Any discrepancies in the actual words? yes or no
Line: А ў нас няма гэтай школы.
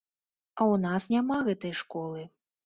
no